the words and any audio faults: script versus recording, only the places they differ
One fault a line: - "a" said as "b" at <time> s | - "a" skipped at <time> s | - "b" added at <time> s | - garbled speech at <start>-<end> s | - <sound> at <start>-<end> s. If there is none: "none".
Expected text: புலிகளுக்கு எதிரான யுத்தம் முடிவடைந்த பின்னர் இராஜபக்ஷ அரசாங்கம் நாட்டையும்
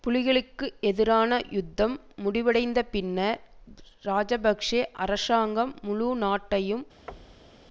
- "முழு" added at 5.8 s
- thud at 7.1-7.7 s